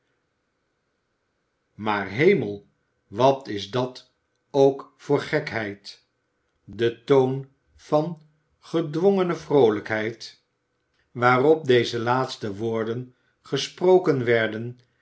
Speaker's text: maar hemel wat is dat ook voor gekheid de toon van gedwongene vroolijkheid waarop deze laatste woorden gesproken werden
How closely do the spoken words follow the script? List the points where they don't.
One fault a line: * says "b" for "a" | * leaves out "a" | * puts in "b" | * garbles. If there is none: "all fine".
all fine